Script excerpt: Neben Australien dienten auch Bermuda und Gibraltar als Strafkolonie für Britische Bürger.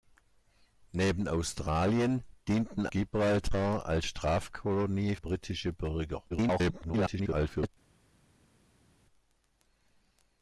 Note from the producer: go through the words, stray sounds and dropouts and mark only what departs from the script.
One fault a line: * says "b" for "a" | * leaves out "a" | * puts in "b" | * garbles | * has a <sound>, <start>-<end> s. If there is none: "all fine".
* leaves out "auch Bermuda und"
* leaves out "für"
* garbles